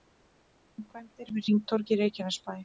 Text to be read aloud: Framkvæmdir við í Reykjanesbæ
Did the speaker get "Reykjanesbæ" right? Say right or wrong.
right